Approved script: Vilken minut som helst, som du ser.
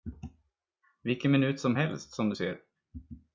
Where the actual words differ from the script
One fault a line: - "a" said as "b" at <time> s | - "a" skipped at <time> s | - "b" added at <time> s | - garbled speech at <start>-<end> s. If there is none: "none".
none